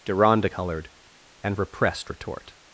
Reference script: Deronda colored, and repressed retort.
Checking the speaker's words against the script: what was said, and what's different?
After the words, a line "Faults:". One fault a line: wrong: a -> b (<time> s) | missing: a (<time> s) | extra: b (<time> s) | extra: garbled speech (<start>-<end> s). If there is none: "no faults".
Deronda colored, and repressed retort.
Faults:
no faults